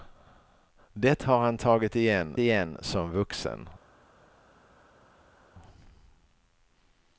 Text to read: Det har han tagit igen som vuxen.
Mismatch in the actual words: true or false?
true